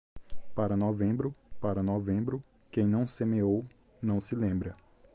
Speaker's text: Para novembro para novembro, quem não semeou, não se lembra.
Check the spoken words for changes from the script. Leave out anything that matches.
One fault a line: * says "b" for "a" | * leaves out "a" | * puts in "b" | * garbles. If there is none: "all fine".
all fine